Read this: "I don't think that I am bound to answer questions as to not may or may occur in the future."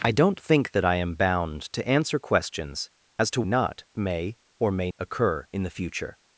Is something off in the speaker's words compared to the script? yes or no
no